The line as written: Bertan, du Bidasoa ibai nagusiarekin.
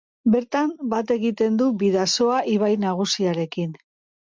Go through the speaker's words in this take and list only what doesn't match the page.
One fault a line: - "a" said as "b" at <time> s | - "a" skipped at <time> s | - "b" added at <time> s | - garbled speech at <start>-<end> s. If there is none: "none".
- "bat egiten" added at 0.9 s